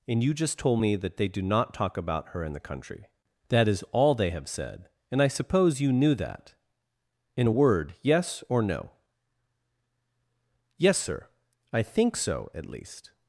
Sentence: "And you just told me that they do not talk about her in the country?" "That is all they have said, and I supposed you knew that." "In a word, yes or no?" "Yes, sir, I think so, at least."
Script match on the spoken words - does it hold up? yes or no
no